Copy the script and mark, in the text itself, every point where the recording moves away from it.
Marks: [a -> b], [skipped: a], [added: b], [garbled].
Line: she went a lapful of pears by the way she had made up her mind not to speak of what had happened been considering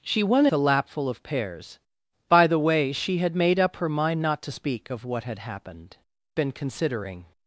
she went a lapful of pears by the way she had made up her mind not to speak of what had happened been considering